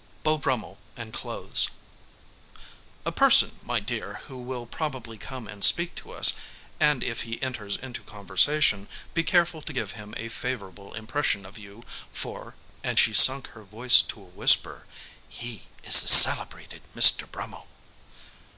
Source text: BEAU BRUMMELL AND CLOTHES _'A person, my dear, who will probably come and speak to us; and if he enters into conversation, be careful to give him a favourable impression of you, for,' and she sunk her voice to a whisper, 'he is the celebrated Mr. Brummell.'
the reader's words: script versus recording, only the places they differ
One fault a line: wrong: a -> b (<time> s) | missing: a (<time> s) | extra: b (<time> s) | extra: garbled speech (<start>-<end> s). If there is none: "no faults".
no faults